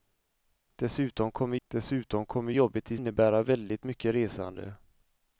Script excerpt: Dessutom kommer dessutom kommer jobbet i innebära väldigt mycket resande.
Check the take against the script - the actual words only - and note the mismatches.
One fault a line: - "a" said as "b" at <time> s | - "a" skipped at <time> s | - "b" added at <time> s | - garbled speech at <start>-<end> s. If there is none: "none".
none